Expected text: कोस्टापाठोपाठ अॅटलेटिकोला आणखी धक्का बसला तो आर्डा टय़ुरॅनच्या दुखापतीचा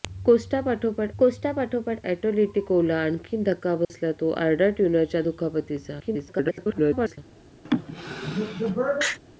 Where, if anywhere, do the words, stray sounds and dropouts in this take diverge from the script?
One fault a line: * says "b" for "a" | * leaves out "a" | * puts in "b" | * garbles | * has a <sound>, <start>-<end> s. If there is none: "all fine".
* puts in "कोस्टापाठोपाठ"
* has a dropout, 3.8-3.9 s
* garbles
* has a sneeze, 7.6-9.2 s